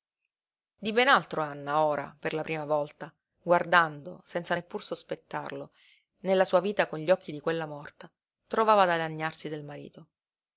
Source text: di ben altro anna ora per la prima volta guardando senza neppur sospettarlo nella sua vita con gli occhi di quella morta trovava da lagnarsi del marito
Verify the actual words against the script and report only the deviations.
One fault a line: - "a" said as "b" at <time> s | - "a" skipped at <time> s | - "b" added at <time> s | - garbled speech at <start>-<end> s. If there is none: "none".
none